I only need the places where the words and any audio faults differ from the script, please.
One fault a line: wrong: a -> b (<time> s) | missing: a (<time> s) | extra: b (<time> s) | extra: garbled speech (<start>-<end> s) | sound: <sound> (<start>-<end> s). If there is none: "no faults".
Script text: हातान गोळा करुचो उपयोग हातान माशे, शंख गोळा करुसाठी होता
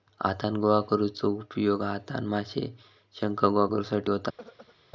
sound: throat clearing (4.4-4.8 s)